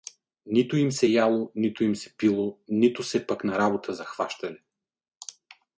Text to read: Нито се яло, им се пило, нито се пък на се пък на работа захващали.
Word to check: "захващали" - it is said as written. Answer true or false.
true